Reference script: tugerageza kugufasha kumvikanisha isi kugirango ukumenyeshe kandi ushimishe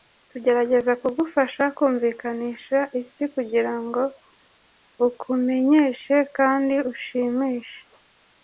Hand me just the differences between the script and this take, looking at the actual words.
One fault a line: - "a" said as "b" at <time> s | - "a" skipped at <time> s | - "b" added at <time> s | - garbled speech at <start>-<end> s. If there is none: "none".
none